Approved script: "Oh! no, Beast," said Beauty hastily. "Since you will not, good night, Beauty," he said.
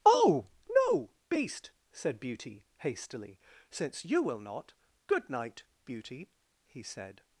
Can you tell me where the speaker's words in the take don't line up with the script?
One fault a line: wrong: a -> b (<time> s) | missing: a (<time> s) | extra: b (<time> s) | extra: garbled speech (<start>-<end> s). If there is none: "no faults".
no faults